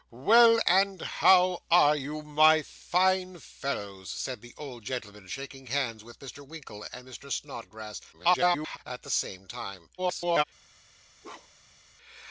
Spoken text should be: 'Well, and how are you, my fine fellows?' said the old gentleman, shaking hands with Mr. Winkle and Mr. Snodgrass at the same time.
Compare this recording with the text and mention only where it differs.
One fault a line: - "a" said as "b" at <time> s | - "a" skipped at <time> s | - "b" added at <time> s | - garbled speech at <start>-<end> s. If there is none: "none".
- garbled speech at 8.1-8.8 s
- garbled speech at 10.0-10.4 s